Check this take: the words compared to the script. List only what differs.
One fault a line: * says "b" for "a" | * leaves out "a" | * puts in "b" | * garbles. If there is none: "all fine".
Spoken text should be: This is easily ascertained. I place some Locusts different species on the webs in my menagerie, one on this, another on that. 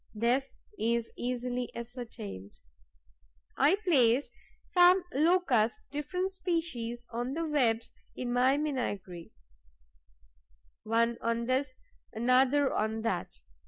all fine